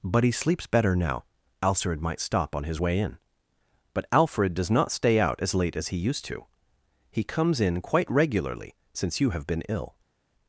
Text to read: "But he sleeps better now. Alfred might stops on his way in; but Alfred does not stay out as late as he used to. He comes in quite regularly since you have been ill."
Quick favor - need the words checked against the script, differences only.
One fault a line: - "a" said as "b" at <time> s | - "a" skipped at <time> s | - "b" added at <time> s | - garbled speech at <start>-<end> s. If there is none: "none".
- "stops" said as "stop" at 2.2 s